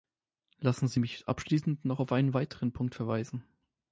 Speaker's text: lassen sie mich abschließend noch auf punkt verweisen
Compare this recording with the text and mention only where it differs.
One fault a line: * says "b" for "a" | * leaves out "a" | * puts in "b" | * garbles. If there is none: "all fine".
* puts in "einen weiteren"